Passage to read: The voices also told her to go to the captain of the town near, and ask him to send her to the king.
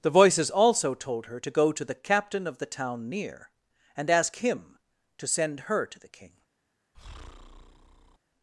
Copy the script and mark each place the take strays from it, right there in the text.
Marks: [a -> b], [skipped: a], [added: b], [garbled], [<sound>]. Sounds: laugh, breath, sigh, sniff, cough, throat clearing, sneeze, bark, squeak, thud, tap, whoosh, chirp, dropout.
The voices also told her to go to the captain of the town near, and ask him to send her to the king. [breath]